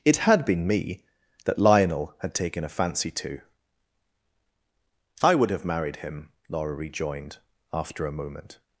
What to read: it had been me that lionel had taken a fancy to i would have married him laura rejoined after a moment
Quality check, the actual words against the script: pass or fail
pass